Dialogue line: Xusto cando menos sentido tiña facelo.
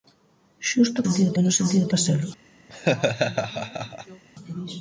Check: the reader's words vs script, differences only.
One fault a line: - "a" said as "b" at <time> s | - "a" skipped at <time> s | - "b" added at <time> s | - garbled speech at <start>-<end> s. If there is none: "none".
- "cando" said as "sentido" at 1.0 s
- "tiña" skipped at 1.9 s